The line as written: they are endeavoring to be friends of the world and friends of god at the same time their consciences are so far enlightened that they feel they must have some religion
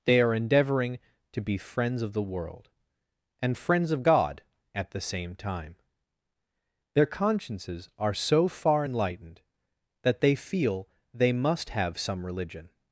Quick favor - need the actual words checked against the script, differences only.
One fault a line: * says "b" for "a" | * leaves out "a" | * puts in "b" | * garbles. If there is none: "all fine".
all fine